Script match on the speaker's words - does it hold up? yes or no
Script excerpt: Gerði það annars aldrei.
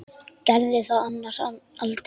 yes